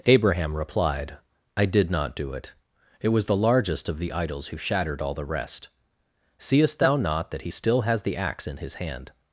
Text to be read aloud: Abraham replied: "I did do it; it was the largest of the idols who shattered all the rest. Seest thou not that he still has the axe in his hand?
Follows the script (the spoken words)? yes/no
no